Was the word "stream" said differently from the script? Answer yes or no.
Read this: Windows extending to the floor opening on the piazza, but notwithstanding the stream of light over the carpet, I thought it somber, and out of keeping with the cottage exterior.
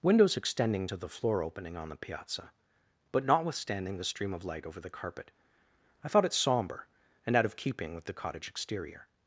no